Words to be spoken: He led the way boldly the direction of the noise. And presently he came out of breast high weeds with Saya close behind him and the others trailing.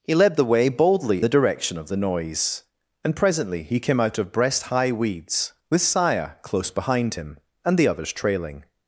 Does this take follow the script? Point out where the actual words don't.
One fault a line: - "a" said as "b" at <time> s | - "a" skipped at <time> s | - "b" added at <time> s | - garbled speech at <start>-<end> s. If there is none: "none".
none